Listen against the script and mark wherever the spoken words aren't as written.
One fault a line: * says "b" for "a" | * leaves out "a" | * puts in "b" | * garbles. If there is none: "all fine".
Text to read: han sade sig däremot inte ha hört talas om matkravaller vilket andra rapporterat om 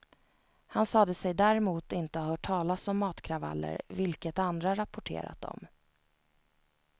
all fine